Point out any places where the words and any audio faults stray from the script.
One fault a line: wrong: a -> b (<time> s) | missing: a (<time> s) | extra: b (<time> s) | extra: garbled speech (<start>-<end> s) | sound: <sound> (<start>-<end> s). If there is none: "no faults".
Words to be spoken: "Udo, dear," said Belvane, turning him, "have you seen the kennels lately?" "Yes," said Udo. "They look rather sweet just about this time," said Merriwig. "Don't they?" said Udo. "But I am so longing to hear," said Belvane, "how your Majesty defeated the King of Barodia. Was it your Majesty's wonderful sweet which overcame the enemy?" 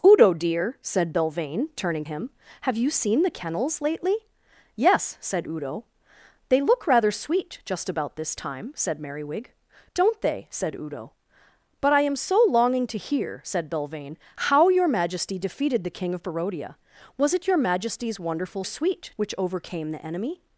no faults